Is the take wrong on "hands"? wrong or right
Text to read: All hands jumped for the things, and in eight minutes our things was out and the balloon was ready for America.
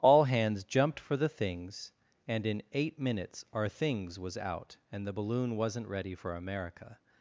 right